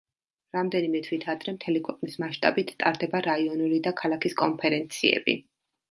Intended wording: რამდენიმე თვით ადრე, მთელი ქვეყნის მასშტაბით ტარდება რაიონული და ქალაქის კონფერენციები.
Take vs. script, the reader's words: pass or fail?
pass